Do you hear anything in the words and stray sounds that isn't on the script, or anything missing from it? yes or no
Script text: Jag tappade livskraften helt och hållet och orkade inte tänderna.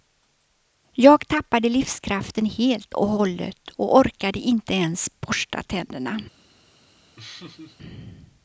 yes